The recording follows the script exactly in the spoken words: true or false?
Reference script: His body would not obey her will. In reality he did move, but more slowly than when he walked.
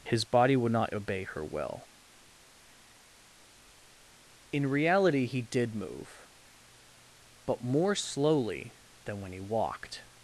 true